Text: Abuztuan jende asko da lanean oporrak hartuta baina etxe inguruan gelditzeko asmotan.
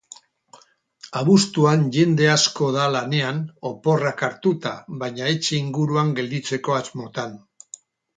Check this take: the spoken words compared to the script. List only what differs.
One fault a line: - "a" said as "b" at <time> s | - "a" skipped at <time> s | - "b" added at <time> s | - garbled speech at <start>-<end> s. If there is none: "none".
none